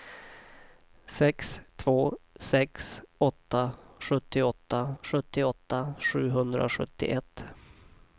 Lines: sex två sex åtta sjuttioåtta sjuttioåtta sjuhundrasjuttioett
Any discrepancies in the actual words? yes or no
no